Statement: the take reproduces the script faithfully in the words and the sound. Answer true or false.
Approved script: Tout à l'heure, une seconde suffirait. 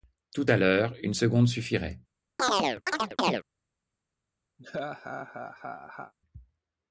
false